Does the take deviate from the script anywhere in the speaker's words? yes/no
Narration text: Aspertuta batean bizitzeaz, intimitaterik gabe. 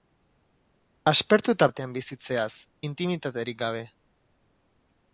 no